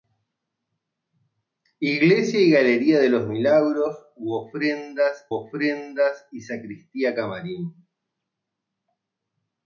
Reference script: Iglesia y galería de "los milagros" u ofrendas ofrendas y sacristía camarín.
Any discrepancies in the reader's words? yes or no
no